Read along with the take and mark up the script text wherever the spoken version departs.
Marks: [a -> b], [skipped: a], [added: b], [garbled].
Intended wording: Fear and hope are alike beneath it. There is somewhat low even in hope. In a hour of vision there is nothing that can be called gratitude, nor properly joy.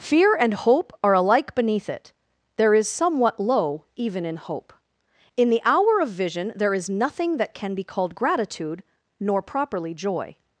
Fear and hope are alike beneath it. There is somewhat low even in hope. In [a -> the] hour of vision there is nothing that can be called gratitude, nor properly joy.